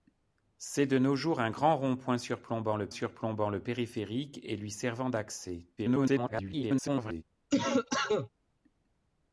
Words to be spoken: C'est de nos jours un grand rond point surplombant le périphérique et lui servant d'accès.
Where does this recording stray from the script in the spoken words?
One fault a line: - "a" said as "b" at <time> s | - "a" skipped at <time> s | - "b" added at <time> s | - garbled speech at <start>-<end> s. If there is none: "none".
- "surplombant le" added at 2.9 s
- garbled speech at 5.8-7.2 s